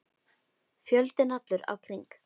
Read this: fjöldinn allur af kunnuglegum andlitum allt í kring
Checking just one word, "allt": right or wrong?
wrong